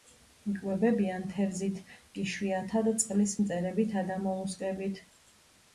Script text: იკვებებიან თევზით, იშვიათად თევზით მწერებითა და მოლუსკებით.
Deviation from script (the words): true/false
true